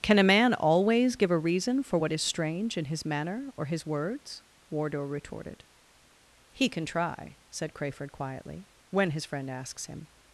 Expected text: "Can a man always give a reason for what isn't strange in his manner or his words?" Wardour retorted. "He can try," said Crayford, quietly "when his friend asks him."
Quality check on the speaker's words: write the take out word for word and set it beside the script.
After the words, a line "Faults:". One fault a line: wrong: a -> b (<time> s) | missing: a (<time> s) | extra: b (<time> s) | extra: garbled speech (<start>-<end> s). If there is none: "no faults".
"Can a man always give a reason for what is strange in his manner or his words?" Wardour retorted. "He can try," said Crayford, quietly "when his friend asks him."
Faults:
wrong: isn't -> is (2.1 s)